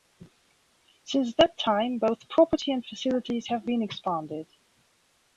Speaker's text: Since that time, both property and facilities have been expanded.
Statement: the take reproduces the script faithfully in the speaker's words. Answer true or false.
true